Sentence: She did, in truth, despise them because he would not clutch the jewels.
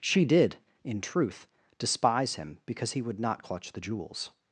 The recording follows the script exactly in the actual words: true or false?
false